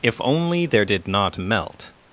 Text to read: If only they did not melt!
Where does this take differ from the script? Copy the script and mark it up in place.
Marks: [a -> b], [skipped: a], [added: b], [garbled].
If only [they -> there] did not melt!